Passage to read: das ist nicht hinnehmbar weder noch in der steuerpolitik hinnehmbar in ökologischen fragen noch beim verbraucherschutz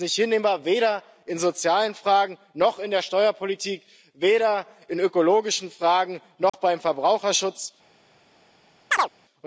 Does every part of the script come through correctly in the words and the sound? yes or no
no